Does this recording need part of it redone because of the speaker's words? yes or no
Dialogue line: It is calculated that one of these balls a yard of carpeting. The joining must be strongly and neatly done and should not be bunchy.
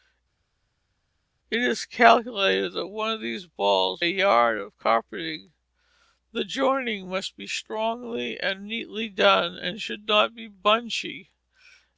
no